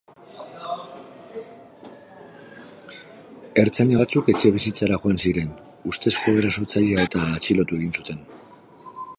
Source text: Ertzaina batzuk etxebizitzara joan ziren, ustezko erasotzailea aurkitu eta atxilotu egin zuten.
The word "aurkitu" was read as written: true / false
false